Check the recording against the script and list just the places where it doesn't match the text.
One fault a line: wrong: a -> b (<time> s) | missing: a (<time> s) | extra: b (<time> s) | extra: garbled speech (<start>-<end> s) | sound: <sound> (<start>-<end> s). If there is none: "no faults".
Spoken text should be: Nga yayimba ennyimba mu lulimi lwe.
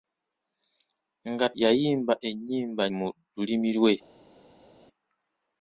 no faults